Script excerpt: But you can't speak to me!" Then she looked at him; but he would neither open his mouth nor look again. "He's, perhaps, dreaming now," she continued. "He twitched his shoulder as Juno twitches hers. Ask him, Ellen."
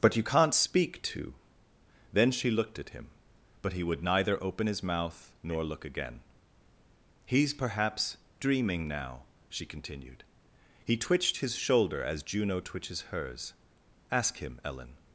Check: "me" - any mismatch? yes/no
yes